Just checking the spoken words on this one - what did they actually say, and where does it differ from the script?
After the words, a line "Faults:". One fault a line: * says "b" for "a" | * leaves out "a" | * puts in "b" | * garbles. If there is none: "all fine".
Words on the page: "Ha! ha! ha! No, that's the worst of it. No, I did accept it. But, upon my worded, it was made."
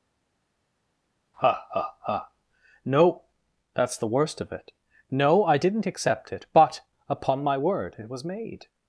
"Ha! ha! ha! No, that's the worst of it. No, I didn't accept it. But, upon my word, it was made."
Faults:
* says "didn't" for "did"
* says "word" for "worded"